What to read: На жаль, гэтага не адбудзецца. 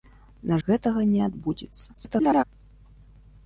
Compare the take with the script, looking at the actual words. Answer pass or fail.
fail